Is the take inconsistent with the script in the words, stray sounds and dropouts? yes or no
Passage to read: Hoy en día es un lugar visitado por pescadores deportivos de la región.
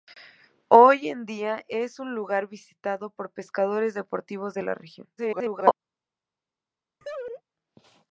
yes